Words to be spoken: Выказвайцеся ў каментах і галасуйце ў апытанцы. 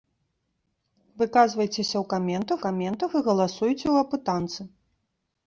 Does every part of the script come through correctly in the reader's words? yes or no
no